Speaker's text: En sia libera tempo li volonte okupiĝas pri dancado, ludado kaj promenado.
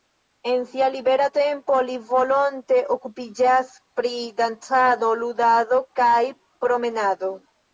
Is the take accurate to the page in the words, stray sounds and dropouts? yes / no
yes